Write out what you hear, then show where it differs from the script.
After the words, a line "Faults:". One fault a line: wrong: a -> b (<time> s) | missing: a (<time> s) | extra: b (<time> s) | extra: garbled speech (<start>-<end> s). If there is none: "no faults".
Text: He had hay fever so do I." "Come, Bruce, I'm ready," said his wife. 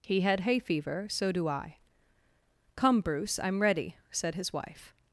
He had hay fever so do I." "Come, Bruce, I'm ready," said his wife.
Faults:
no faults